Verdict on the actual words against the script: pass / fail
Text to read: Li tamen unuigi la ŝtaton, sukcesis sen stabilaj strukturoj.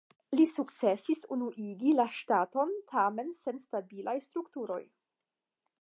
fail